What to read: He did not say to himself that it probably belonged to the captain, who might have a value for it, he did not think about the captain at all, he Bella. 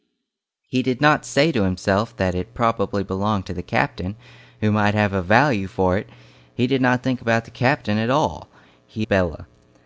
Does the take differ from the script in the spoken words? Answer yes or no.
no